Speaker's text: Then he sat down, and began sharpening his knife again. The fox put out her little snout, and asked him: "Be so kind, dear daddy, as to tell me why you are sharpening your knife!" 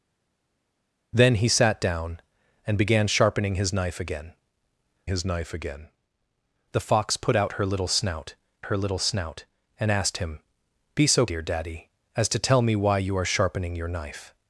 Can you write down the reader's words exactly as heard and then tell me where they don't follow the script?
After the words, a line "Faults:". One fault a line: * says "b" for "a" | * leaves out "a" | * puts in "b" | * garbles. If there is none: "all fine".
Then he sat down, and began sharpening his knife again his knife again. The fox put out her little snout her little snout, and asked him: "Be so dear daddy, as to tell me why you are sharpening your knife!"
Faults:
* puts in "his knife again"
* puts in "her little snout"
* leaves out "kind"